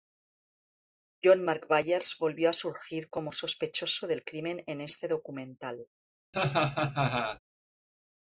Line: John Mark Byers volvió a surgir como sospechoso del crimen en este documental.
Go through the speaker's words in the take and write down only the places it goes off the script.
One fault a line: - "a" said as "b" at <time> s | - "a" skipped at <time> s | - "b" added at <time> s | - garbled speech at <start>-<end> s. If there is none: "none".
none